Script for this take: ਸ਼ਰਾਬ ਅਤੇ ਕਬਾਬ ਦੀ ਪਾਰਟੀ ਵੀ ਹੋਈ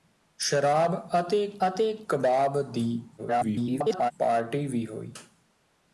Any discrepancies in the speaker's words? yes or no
yes